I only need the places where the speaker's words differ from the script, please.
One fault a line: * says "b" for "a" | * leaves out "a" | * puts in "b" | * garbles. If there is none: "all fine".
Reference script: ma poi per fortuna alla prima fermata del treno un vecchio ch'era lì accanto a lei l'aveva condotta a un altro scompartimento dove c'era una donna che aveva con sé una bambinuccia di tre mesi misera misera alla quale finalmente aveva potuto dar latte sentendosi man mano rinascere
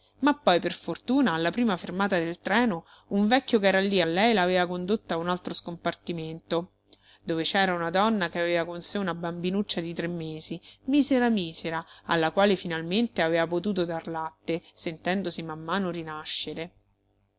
* leaves out "accanto"